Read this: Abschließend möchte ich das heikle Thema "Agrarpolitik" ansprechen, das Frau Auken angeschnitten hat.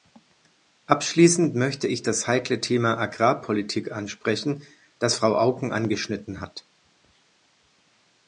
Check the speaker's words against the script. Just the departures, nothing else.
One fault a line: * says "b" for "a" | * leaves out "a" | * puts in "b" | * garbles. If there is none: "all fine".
all fine